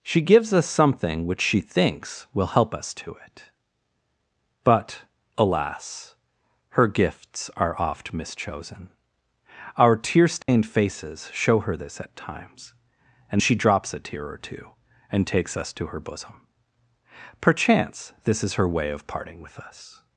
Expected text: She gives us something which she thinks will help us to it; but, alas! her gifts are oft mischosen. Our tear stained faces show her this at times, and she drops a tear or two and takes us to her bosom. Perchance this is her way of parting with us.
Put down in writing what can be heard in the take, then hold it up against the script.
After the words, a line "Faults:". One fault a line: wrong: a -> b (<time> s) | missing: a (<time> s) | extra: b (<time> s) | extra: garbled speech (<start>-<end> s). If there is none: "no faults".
She gives us something which she thinks will help us to it; but, alas! her gifts are oft mischosen. Our tear stained faces show her this at times, and she drops a tear or two and takes us to her bosom. Perchance this is her way of parting with us.
Faults:
no faults